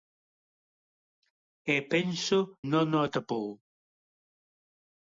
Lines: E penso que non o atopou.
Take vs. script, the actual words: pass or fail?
fail